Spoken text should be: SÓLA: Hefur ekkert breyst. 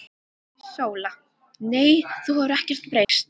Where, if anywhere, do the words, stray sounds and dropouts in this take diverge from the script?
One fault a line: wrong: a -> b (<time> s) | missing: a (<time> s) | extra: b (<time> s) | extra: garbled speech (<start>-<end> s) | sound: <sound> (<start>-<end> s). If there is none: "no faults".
extra: Nei þú (1.7 s)
sound: dropout (3.0-3.1 s)